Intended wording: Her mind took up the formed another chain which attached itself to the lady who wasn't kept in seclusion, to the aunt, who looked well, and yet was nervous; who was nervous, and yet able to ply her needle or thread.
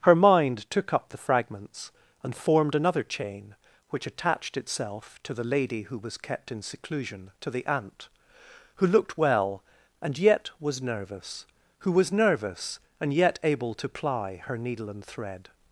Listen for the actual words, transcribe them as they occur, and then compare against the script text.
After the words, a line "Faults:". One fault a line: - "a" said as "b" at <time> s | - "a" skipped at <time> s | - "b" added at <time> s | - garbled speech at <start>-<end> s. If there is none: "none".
Her mind took up the fragments, and formed another chain which attached itself to the lady who was kept in seclusion, to the aunt, who looked well, and yet was nervous; who was nervous, and yet able to ply her needle and thread.
Faults:
- "fragments and" added at 1.2 s
- "wasn't" said as "was" at 6.0 s
- "or" said as "and" at 14.9 s